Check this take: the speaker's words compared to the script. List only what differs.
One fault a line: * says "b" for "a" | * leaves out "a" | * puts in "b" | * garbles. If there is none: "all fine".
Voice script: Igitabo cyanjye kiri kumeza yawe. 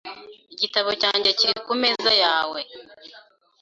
all fine